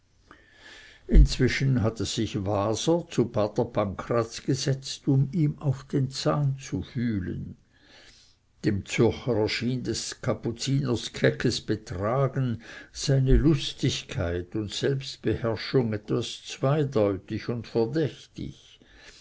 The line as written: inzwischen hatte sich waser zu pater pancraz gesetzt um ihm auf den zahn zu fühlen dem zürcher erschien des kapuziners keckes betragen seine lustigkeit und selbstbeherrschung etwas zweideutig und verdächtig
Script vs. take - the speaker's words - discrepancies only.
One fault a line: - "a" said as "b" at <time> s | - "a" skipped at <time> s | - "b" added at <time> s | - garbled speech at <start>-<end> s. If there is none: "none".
none